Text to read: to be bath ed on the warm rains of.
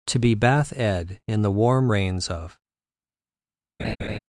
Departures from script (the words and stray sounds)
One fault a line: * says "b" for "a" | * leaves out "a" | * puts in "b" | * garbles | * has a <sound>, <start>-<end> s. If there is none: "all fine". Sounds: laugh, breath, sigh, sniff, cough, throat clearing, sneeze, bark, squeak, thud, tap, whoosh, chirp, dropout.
* says "in" for "on"
* has a laugh, 3.8-4.2 s